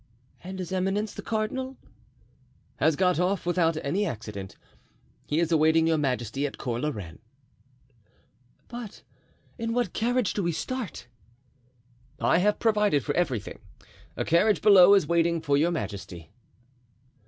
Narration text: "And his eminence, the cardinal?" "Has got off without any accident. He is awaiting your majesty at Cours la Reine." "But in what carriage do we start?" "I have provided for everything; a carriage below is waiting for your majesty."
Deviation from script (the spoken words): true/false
false